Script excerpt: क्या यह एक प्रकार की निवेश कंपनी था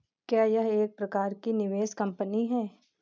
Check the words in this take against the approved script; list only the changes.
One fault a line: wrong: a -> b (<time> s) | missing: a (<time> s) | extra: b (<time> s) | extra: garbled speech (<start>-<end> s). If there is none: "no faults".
wrong: था -> है (2.5 s)